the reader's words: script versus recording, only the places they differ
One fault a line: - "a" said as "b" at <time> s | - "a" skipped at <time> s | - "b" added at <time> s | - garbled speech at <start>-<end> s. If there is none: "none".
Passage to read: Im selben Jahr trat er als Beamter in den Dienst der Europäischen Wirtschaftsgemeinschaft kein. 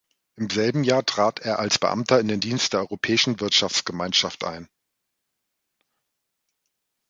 - "kein" said as "ein" at 4.4 s